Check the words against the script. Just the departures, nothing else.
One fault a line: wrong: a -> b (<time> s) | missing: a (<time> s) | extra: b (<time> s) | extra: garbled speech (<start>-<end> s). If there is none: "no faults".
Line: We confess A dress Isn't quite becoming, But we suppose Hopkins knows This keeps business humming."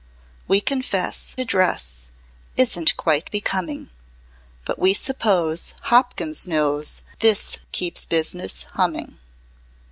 no faults